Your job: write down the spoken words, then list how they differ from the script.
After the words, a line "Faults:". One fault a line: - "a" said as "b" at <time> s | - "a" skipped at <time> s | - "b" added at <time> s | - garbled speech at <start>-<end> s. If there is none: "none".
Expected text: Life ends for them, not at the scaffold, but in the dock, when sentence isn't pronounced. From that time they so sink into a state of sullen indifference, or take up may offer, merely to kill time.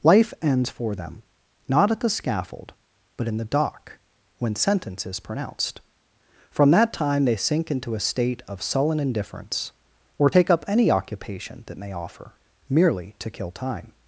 Life ends for them, not at the scaffold, but in the dock, when sentence is pronounced. From that time they sink into a state of sullen indifference, or take up any occupation that may offer, merely to kill time.
Faults:
- "isn't" said as "is" at 5.0 s
- "so" skipped at 7.3 s
- "any occupation that" added at 10.7 s